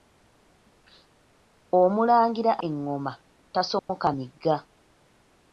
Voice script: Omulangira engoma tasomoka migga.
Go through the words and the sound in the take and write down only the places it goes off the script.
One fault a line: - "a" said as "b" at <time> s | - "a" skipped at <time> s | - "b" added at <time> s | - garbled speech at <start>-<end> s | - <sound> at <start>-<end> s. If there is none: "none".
- dropout at 3.8-3.9 s